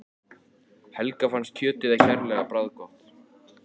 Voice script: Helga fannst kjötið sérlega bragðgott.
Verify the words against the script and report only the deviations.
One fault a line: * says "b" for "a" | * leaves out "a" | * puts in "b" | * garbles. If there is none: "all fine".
all fine